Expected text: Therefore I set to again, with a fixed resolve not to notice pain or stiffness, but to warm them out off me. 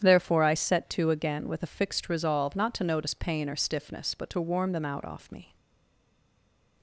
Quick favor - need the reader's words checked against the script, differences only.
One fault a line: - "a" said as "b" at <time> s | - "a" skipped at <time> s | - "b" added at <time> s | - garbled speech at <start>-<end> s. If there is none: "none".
none